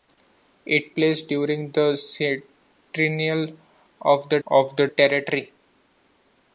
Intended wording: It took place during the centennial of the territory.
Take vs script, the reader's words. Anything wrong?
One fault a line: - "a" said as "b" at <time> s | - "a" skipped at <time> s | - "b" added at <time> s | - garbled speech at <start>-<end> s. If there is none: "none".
- "took" skipped at 0.9 s
- "of the" added at 4.5 s